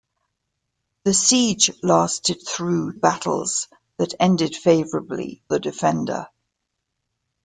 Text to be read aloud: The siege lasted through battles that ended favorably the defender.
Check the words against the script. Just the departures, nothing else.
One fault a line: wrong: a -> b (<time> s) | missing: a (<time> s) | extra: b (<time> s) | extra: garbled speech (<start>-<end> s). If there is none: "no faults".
no faults